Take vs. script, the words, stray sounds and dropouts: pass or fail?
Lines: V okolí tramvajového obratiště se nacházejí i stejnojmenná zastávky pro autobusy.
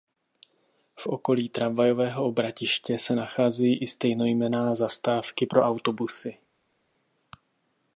pass